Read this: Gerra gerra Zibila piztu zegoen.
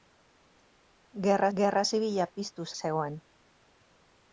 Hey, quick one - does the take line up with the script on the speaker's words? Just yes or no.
yes